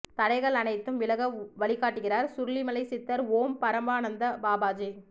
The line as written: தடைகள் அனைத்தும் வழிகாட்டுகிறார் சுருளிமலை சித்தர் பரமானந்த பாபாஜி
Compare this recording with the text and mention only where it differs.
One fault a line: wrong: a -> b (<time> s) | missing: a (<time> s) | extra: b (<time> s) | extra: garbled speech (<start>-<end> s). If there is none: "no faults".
extra: விலக (1.0 s)
extra: ஓம் (3.3 s)